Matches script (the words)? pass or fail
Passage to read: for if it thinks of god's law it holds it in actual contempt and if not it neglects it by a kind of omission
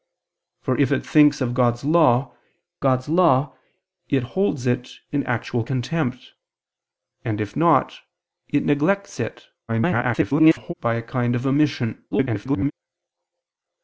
fail